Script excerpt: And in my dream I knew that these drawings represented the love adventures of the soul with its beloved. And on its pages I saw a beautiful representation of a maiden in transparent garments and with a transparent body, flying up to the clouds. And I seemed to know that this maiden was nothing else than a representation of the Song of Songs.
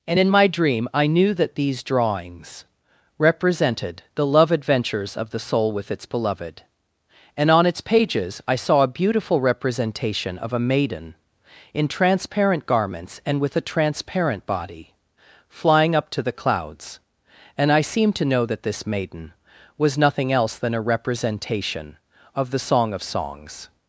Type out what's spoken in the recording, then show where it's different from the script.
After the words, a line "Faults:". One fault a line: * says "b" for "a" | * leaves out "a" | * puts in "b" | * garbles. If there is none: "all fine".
And in my dream I knew that these drawings represented the love adventures of the soul with its beloved. And on its pages I saw a beautiful representation of a maiden in transparent garments and with a transparent body, flying up to the clouds. And I seemed to know that this maiden was nothing else than a representation of the Song of Songs.
Faults:
all fine